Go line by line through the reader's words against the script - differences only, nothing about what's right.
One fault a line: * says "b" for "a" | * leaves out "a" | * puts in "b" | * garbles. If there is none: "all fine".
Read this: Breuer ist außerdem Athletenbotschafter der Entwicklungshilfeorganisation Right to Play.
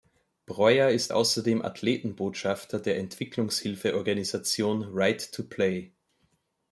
all fine